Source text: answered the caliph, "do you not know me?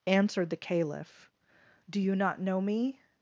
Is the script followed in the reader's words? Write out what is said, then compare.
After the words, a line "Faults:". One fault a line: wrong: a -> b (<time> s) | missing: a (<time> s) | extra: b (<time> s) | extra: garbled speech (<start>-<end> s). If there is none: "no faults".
answered the caliph, "do you not know me?
Faults:
no faults